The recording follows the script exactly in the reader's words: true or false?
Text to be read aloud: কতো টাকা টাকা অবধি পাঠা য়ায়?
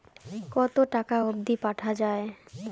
false